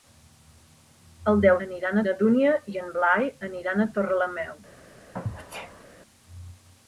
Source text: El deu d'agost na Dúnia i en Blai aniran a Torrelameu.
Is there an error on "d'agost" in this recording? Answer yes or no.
yes